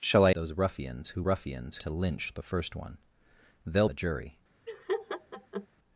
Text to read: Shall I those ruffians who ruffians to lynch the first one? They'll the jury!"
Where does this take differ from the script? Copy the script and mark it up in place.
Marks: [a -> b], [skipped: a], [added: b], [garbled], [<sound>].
Shall I those ruffians who ruffians to lynch the first one? They'll the jury!" [laugh]